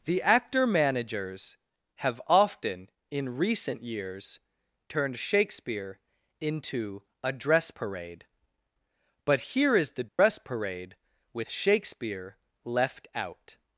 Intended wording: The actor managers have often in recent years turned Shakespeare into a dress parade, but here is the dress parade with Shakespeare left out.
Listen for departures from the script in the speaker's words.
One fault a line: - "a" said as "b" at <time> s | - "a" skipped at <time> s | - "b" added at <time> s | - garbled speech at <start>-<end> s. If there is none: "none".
none